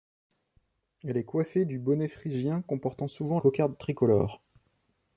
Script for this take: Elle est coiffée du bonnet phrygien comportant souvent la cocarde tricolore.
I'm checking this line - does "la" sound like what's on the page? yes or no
no